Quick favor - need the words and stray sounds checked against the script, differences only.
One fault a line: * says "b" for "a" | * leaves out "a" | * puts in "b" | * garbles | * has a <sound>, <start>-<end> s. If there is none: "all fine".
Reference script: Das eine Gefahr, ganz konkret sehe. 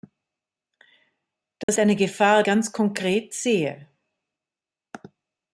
* has a dropout, 1.6-1.7 s